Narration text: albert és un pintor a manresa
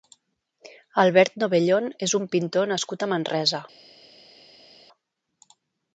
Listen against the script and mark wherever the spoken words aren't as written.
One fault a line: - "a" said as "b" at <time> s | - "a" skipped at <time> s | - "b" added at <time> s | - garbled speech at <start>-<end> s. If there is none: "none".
- "novellón" added at 1.4 s
- "nascut" added at 2.7 s